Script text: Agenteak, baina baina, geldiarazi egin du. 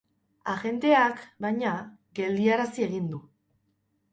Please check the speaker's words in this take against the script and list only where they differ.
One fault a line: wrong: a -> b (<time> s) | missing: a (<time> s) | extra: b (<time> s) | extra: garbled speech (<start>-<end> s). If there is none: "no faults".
missing: baina (1.7 s)